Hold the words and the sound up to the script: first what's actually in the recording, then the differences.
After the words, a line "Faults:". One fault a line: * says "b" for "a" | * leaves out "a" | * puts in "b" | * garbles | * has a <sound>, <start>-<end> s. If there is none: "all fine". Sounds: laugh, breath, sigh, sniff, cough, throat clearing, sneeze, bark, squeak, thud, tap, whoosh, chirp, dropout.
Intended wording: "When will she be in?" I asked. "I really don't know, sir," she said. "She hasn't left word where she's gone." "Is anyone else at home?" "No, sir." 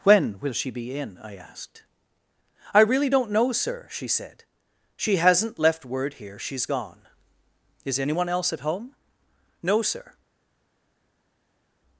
"When will she be in?" I asked. "I really don't know, sir," she said. "She hasn't left word here she's gone." "Is anyone else at home?" "No, sir."
Faults:
* says "here" for "where"